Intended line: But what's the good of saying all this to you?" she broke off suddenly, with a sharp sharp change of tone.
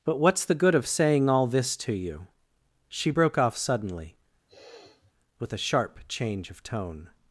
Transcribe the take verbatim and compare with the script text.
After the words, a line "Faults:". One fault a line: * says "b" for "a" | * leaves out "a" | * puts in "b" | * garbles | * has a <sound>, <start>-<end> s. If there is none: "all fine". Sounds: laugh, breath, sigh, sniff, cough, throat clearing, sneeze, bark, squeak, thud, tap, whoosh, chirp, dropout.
But what's the good of saying all this to you?" she broke off suddenly, with a sharp change of tone.
Faults:
* has a sniff, 4.5-5.1 s
* leaves out "sharp"